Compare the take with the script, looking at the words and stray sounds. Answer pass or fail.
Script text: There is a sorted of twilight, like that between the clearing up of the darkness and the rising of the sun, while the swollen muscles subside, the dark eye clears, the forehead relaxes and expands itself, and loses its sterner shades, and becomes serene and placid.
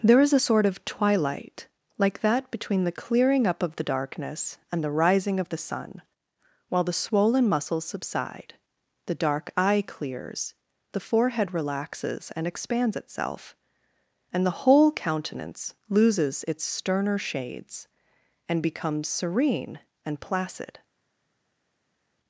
fail